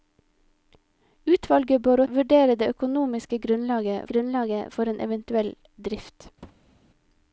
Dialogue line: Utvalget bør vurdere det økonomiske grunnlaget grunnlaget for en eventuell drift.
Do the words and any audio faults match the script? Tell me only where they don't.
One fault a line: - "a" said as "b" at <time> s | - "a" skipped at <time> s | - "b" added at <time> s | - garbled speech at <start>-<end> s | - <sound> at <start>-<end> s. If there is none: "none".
- thud at 6.4-6.7 s